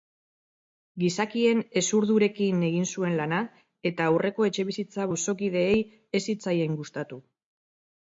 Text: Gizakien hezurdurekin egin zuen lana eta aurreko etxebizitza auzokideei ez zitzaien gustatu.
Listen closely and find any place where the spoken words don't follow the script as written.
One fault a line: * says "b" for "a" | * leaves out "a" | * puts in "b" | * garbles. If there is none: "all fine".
all fine